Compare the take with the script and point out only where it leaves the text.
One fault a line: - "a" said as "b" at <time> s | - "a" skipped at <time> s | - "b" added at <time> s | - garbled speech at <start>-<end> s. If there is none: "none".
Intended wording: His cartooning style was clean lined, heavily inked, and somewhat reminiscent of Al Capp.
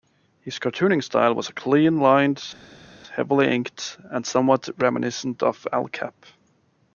none